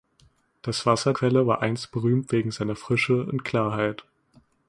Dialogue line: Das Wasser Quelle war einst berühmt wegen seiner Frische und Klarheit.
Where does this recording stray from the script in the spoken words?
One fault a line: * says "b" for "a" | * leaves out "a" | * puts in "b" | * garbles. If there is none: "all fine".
all fine